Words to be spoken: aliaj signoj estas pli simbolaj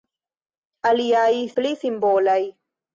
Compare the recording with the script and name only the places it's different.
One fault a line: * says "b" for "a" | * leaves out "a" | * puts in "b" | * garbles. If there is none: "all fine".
* leaves out "signoj estas"